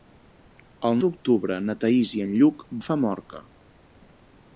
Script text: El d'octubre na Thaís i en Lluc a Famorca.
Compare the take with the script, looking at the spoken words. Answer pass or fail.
pass